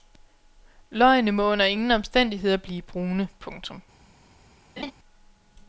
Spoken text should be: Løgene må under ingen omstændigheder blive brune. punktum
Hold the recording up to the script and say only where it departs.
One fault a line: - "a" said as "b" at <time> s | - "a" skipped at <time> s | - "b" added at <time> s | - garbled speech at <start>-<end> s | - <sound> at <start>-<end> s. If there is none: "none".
- laugh at 4.8-4.9 s